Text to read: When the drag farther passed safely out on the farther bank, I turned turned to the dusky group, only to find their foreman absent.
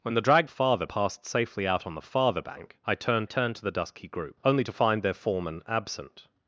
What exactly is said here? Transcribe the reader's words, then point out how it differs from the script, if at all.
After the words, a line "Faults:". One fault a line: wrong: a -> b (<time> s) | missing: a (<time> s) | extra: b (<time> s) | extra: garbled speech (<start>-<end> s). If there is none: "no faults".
When the drag farther passed safely out on the farther bank, I turned turned to the dusky group, only to find their foreman absent.
Faults:
no faults